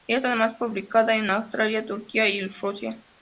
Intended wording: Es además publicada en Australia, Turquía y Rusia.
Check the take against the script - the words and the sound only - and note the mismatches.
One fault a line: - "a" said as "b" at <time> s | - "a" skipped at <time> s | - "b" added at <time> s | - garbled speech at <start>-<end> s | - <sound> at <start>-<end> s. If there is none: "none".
none